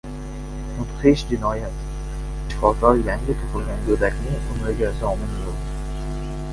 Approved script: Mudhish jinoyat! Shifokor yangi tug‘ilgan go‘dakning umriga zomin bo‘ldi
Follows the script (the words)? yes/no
yes